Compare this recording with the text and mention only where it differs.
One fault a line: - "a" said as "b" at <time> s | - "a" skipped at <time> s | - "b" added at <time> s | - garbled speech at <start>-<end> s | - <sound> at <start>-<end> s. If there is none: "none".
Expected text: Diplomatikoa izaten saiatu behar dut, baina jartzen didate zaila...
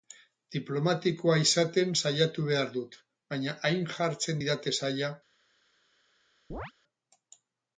- "hain" added at 3.7 s
- chirp at 6.5-6.7 s